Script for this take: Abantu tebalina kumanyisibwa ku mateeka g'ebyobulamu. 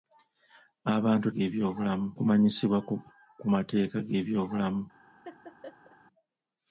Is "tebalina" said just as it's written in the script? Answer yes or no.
no